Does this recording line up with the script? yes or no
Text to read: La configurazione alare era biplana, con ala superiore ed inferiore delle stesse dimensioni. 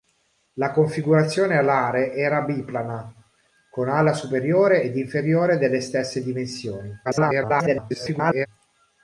no